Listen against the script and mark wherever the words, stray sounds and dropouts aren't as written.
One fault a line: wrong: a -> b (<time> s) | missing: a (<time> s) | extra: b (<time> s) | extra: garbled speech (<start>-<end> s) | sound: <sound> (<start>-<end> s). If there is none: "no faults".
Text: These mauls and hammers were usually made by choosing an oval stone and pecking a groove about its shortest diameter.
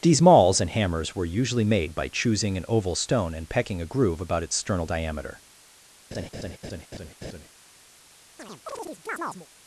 wrong: shortest -> sternal (4.5 s)
sound: laugh (6.1-7.5 s)
sound: chirp (8.4-9.5 s)